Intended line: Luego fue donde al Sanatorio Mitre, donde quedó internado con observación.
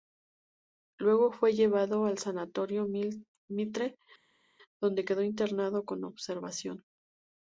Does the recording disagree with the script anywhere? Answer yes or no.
yes